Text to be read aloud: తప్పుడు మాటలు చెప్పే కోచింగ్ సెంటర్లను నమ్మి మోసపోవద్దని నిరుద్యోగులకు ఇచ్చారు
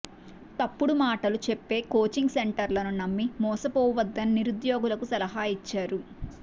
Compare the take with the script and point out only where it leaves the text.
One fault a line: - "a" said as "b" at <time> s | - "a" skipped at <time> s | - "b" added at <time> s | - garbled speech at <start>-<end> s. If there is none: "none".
- "సలహా" added at 5.1 s